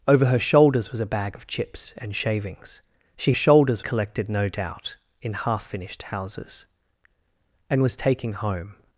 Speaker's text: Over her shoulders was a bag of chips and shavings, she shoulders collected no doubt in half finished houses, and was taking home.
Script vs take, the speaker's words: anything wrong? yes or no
no